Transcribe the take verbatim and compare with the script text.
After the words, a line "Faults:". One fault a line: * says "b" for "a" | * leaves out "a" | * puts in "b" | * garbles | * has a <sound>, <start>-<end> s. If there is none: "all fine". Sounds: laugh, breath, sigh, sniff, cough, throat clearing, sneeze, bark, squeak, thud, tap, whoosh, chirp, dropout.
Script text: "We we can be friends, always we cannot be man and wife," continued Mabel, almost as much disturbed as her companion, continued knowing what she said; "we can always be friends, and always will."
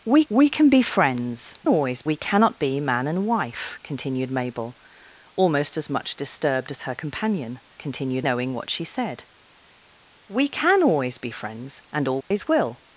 "We we can be friends, always we cannot be man and wife," continued Mabel, almost as much disturbed as her companion, continued knowing what she said; "we can always be friends, and always will."
Faults:
* has a dropout, 12.2-12.3 s